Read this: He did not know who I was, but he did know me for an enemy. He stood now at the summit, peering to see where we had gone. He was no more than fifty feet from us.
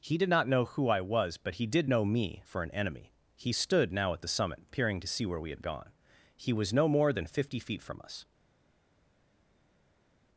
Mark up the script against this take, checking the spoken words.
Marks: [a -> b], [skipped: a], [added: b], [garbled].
He did not know who I was, but he did know me for an enemy. He stood now at the summit, peering to see where we had gone. He was no more than fifty feet from us.